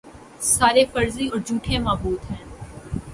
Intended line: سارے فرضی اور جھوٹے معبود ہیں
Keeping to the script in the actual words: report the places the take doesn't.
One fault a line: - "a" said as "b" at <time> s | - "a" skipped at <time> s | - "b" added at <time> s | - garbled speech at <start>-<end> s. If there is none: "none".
none